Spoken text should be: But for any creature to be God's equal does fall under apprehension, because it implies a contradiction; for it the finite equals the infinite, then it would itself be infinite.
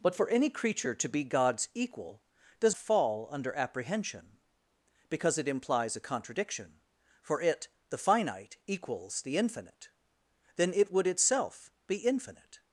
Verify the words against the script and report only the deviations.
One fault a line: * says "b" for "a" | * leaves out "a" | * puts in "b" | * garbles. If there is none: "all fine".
all fine